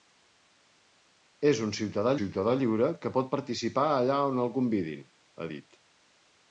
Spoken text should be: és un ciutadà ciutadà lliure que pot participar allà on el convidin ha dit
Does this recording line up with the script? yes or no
yes